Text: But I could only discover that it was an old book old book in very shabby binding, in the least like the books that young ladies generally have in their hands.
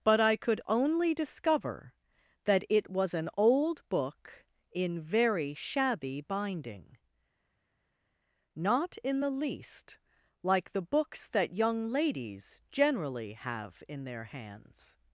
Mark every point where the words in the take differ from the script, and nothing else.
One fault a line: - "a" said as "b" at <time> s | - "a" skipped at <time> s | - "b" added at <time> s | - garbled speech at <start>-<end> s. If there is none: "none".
- "old book" skipped at 4.4 s
- "not" added at 8.5 s